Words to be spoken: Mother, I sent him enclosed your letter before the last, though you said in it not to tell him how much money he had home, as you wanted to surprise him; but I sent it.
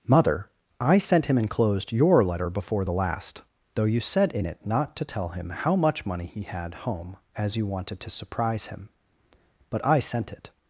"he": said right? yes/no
yes